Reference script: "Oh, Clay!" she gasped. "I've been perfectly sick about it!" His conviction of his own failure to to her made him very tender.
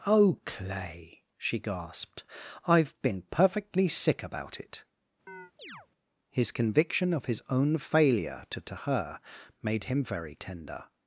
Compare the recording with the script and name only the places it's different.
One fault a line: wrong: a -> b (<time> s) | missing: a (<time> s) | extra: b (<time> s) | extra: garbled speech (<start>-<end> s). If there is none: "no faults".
no faults